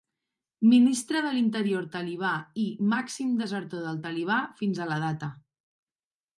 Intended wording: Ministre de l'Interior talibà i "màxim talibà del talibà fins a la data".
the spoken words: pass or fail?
fail